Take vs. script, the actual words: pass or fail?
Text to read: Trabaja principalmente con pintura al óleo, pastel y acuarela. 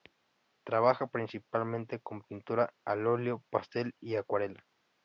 pass